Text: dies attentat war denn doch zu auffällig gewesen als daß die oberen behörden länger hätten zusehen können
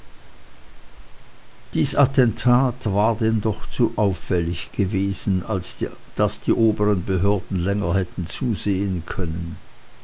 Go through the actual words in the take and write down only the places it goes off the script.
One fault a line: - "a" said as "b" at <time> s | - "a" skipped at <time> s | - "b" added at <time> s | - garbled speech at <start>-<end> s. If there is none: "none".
none